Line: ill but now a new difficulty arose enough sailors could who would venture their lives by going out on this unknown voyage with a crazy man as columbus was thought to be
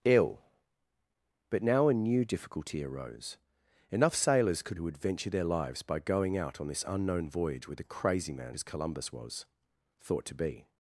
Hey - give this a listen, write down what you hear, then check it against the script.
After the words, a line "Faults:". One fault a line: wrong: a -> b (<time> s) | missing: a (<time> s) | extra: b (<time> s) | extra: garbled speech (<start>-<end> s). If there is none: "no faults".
ill but now a new difficulty arose enough sailors could who would venture their lives by going out on this unknown voyage with a crazy man as columbus was thought to be
Faults:
no faults